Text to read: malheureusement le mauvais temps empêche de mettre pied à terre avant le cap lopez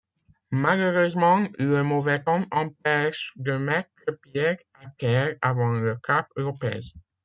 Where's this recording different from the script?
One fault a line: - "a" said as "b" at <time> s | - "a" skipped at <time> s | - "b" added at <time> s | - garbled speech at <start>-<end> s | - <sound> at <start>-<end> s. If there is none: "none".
none